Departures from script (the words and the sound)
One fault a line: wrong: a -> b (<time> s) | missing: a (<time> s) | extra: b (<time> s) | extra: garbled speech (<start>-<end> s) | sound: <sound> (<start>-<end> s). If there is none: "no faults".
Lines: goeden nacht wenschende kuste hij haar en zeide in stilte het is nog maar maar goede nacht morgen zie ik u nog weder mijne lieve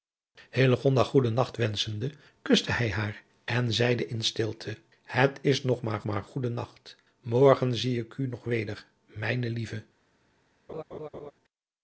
sound: laugh (10.7-11.3 s)